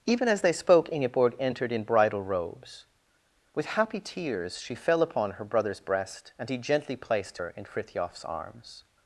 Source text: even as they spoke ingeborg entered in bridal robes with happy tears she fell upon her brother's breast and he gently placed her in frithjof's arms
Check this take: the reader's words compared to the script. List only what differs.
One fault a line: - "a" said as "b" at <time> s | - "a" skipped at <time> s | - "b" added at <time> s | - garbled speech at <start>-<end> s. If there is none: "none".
none